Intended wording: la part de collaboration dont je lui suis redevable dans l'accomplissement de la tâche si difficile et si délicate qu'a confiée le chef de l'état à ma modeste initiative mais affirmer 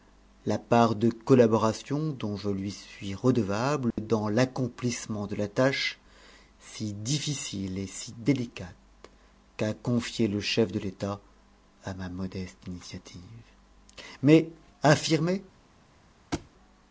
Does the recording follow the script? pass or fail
pass